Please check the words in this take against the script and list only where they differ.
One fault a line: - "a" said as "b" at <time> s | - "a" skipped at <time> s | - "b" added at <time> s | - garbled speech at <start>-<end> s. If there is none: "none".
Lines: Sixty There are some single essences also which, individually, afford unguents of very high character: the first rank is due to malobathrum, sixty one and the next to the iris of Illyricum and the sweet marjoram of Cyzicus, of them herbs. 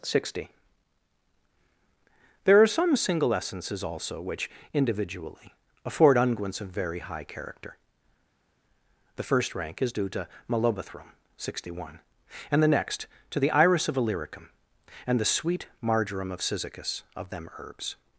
none